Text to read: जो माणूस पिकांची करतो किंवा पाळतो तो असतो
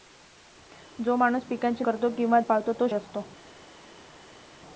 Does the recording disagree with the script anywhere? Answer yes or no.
no